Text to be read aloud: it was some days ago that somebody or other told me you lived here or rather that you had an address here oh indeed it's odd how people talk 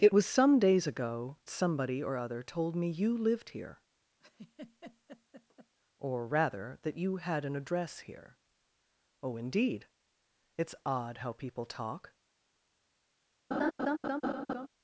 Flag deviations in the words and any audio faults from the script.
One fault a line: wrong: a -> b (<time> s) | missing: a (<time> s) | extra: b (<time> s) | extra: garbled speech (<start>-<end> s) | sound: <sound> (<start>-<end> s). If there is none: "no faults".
missing: that (1.4 s)
sound: laugh (4.2-5.7 s)
sound: laugh (13.5-14.7 s)